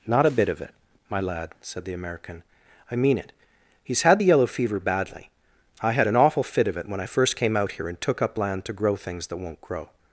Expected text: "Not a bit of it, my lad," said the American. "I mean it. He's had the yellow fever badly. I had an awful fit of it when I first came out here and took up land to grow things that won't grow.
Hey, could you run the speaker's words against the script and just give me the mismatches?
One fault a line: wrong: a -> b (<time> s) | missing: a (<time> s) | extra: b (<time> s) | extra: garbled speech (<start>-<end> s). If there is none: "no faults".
no faults